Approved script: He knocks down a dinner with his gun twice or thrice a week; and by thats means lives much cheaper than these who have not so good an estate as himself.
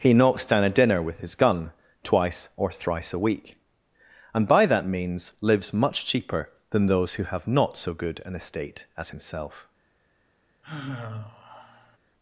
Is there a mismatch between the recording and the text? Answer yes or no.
yes